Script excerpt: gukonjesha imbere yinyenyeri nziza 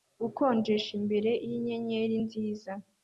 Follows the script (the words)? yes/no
yes